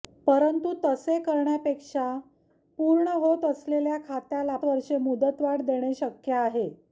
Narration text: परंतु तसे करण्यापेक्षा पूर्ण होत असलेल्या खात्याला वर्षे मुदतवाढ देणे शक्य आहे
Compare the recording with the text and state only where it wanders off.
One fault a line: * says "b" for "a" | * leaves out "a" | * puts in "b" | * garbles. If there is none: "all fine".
all fine